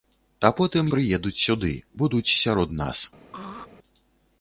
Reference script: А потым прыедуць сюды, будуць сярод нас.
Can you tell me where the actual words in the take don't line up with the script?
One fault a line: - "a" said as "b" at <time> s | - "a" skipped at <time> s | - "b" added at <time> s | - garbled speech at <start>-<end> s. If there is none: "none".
none